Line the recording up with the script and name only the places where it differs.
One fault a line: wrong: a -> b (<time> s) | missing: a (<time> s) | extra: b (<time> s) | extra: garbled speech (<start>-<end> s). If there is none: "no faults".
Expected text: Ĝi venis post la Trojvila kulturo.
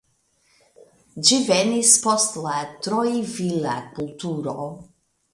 no faults